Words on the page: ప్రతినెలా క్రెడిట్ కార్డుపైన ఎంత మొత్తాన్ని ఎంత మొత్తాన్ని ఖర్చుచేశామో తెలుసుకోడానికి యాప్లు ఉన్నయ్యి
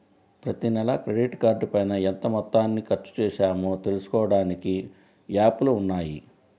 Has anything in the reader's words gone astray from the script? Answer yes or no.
yes